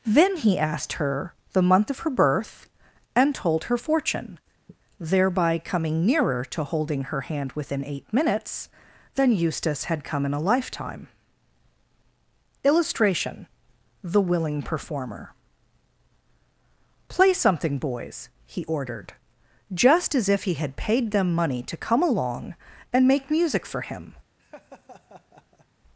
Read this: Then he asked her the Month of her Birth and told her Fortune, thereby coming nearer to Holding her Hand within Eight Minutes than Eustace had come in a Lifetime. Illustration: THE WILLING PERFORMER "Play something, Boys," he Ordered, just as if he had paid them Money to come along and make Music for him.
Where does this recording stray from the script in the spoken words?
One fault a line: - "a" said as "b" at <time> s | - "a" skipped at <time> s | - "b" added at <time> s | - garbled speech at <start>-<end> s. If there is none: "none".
none